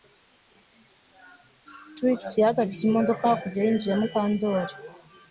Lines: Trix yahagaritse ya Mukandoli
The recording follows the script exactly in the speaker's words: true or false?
false